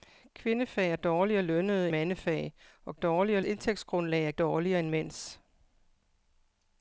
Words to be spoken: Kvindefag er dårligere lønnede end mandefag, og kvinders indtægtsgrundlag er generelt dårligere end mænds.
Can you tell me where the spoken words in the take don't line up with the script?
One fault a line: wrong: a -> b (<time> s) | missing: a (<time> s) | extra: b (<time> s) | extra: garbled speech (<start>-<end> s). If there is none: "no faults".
missing: end (1.9 s)
wrong: kvinders -> dårligere (2.9 s)
missing: generelt (4.3 s)